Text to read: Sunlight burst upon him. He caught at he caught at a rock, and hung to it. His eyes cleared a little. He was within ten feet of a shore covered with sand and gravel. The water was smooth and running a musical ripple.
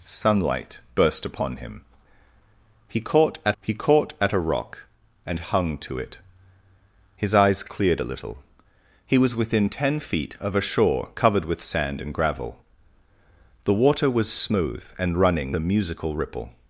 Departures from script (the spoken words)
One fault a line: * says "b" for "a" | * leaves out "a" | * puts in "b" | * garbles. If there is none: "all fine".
all fine